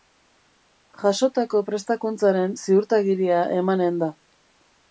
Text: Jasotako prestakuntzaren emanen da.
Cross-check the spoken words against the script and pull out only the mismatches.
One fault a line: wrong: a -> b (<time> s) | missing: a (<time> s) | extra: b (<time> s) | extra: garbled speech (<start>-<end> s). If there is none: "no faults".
extra: ziurtagiria (2.6 s)